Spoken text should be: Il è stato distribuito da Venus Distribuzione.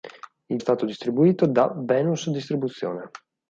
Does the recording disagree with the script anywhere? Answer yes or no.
no